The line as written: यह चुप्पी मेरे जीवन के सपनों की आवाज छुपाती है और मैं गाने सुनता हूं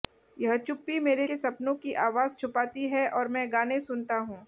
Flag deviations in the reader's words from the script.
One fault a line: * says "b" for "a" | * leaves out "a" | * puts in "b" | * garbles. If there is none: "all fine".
* leaves out "जीवन"